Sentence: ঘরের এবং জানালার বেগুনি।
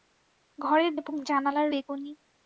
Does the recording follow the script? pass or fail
pass